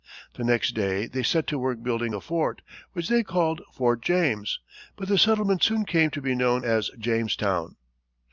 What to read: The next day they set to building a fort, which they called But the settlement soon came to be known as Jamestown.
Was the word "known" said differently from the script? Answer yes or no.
no